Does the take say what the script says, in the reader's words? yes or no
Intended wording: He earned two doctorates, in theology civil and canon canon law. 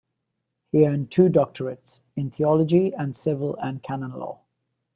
no